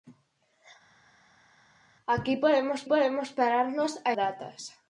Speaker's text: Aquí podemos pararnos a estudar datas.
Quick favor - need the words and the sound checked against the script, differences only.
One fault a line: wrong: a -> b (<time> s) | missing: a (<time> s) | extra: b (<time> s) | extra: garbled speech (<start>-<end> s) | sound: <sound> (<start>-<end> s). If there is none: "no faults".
extra: podemos (2.8 s)
missing: estudar (4.1 s)